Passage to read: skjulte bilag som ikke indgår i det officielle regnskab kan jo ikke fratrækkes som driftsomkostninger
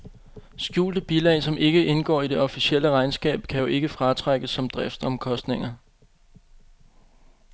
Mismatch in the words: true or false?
false